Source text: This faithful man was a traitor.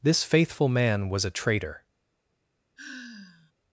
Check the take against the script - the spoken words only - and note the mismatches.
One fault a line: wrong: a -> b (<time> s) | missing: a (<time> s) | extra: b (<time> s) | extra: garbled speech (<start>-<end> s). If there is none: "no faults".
no faults